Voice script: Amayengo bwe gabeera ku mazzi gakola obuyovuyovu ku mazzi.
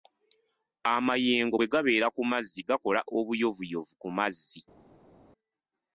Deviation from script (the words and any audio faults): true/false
false